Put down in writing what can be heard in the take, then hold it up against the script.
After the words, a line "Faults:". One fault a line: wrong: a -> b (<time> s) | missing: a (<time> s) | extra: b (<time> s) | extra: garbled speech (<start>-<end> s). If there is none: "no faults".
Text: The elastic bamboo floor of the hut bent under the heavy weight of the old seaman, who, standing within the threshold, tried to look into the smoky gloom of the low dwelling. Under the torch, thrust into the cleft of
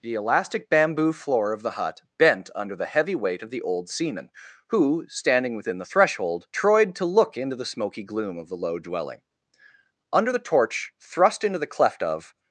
The elastic bamboo floor of the hut bent under the heavy weight of the old seaman, who, standing within the threshold, tried to look into the smoky gloom of the low dwelling. Under the torch, thrust into the cleft of
Faults:
no faults